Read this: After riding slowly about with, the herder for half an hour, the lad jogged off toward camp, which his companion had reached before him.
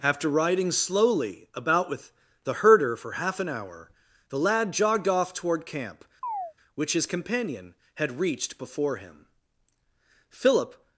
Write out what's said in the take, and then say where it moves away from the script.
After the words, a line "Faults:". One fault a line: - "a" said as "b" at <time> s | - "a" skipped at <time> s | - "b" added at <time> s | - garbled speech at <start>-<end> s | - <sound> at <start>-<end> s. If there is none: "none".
After riding slowly about with, the herder for half an hour, the lad jogged off toward camp, which his companion had reached before him. Philip
Faults:
- chirp at 6.2-6.5 s
- "Philip" added at 10.3 s